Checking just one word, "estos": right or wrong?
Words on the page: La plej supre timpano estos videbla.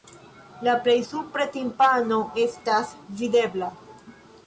wrong